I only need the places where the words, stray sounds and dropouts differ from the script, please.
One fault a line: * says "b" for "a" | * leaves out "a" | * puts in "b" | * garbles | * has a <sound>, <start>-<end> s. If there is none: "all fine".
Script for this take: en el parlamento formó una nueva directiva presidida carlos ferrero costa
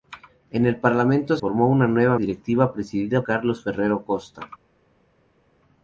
all fine